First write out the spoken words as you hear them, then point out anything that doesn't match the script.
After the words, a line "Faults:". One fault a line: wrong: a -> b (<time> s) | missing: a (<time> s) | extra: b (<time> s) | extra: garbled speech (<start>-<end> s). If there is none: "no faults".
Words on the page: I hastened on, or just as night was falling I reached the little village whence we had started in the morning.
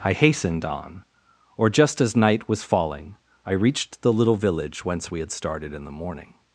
I hastened on, or just as night was falling I reached the little village whence we had started in the morning.
Faults:
no faults